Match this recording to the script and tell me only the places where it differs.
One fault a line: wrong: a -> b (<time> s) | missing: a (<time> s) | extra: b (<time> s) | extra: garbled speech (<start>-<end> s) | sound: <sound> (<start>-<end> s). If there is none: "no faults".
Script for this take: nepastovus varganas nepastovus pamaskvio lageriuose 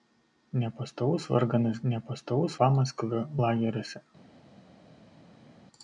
no faults